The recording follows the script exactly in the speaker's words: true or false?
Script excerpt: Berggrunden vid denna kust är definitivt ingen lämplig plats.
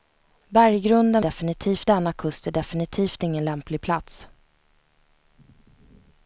false